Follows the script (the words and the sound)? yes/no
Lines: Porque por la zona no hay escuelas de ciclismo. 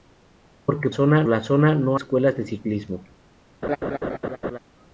no